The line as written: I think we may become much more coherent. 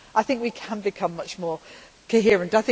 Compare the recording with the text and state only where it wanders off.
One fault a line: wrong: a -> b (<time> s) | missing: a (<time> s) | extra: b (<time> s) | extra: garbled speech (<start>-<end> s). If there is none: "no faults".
wrong: may -> can (0.5 s)